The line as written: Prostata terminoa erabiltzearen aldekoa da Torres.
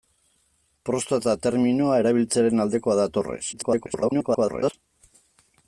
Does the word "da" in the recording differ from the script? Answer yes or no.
no